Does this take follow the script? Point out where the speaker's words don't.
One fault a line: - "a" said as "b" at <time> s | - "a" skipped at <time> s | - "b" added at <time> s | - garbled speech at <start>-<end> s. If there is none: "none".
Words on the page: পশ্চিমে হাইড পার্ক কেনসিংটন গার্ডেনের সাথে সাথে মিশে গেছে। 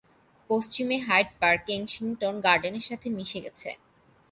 - "সাথে" skipped at 3.1 s